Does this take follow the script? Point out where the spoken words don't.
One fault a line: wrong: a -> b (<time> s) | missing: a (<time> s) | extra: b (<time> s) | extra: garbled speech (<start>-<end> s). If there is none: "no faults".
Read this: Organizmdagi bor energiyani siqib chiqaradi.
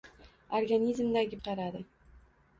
missing: bor energiyani siqib (1.4 s)